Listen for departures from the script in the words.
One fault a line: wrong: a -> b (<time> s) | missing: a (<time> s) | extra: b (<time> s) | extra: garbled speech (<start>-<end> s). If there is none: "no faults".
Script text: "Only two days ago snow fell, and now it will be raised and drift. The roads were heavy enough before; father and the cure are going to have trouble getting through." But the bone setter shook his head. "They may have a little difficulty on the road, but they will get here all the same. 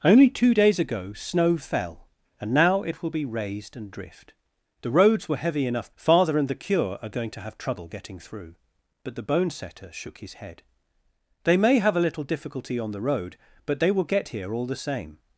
missing: before (5.9 s)